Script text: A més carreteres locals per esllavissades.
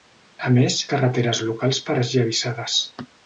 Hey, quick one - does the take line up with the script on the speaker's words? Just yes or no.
yes